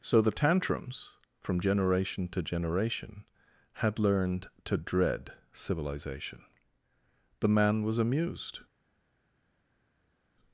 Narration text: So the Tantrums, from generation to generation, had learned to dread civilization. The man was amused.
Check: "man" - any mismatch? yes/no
no